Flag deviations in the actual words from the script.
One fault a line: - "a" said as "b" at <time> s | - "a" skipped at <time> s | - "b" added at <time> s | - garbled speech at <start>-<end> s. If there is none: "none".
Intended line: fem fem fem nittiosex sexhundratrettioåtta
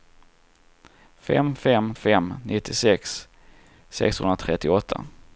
none